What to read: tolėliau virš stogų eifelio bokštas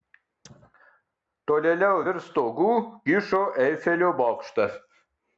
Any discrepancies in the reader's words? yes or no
yes